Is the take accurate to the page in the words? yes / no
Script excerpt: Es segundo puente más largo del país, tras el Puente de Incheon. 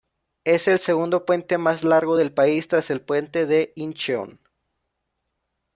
no